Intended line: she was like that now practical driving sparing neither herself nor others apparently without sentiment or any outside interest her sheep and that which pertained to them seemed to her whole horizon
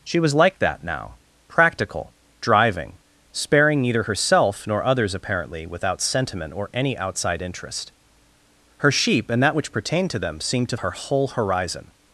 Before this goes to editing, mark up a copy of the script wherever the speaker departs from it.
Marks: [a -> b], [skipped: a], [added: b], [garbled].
she was like that now practical driving sparing neither herself nor others apparently without sentiment or any outside interest her sheep and that which pertained to them seemed to her whole horizon